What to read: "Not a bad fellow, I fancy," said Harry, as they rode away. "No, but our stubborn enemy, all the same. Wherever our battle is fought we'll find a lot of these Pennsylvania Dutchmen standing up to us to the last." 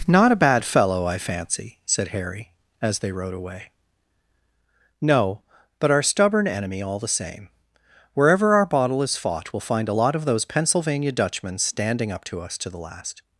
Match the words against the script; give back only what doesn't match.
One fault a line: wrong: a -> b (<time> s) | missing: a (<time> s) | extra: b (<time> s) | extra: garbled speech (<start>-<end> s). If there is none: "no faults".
wrong: battle -> bottle (8.7 s)
wrong: these -> those (10.2 s)